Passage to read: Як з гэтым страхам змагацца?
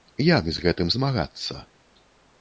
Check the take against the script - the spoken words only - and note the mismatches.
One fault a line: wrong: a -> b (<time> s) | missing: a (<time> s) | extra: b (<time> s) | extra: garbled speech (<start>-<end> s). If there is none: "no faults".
missing: страхам (0.9 s)